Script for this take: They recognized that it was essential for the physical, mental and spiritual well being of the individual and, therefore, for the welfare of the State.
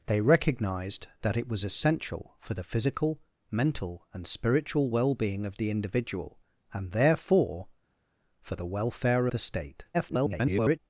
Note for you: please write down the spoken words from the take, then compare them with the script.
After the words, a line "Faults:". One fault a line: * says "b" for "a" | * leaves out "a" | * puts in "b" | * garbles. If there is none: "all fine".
They recognized that it was essential for the physical, mental and spiritual well being of the individual and, therefore, for the welfare the State. [garbled]
Faults:
* leaves out "of"
* garbles